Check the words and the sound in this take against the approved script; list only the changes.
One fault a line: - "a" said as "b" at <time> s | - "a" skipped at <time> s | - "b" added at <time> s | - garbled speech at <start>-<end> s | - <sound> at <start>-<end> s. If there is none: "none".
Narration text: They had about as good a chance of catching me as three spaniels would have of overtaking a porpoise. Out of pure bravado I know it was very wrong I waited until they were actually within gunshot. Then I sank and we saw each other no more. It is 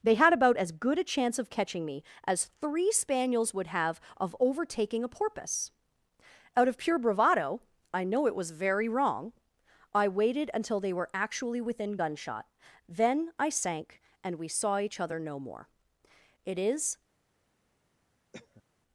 - cough at 18.3-18.6 s